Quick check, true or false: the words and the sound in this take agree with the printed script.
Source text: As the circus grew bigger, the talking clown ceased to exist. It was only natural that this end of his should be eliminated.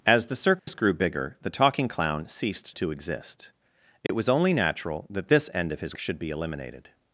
false